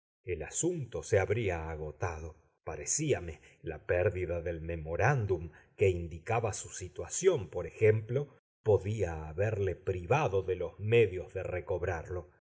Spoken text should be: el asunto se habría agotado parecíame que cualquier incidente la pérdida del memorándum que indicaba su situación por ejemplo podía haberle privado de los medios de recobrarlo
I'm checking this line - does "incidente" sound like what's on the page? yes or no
no